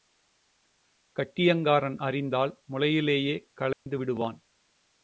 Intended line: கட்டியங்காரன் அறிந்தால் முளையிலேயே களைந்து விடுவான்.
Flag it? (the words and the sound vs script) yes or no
yes